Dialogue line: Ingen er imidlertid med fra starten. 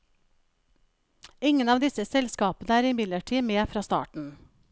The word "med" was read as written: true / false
true